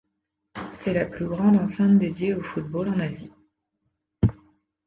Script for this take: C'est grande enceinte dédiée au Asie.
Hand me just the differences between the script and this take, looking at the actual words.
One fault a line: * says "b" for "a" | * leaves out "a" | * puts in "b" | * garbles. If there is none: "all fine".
* puts in "la plus"
* puts in "football en"